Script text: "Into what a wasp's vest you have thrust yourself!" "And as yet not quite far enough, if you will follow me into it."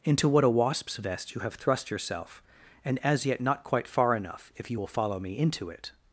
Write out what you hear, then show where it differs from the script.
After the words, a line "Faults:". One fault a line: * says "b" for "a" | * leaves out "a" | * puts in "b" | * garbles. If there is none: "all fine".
"Into what a wasp's vest you have thrust yourself!" "And as yet not quite far enough, if you will follow me into it."
Faults:
all fine